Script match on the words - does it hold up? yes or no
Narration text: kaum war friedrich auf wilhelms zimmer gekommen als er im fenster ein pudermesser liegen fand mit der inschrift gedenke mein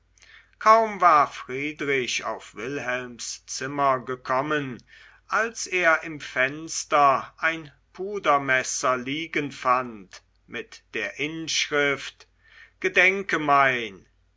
yes